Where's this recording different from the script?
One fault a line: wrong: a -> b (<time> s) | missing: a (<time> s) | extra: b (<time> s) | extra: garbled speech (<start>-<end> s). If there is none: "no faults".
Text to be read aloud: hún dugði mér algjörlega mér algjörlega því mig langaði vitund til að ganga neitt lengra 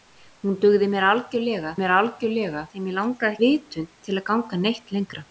no faults